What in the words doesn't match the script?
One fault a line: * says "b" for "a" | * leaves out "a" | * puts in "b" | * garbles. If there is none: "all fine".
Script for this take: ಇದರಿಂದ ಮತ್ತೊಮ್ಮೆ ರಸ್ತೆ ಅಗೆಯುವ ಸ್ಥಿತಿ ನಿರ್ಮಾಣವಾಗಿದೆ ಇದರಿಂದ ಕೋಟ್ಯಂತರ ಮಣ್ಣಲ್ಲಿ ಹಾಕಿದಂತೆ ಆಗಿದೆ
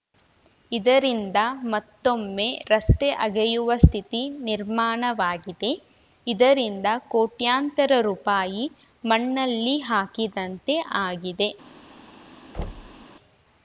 * puts in "ರುಪಾಯಿ"